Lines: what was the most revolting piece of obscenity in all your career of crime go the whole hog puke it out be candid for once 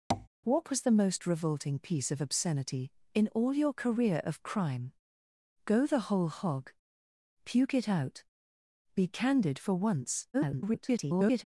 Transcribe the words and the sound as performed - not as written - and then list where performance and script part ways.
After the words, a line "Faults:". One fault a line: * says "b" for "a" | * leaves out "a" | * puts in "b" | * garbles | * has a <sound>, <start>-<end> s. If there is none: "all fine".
what was the most revolting piece of obscenity in all your career of crime go the whole hog puke it out be candid for once [garbled]
Faults:
* has a tap, 0.1-0.3 s
* garbles